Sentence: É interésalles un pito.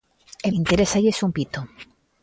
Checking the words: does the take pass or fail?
pass